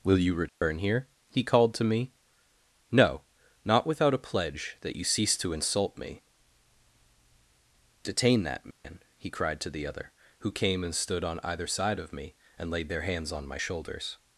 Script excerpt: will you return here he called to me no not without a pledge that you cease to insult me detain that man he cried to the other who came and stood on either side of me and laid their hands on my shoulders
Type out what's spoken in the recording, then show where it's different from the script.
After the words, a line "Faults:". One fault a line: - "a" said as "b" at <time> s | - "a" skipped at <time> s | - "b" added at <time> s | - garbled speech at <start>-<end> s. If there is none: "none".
will you return here he called to me no not without a pledge that you cease to insult me detain that man he cried to the other who came and stood on either side of me and laid their hands on my shoulders
Faults:
none